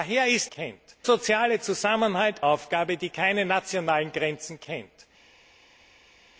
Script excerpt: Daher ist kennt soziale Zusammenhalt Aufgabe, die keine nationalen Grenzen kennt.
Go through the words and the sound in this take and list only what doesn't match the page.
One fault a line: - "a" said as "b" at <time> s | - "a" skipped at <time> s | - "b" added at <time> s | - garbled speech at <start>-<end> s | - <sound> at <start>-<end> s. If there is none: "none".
none